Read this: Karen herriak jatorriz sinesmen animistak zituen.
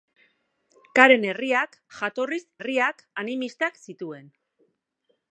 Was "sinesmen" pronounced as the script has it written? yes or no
no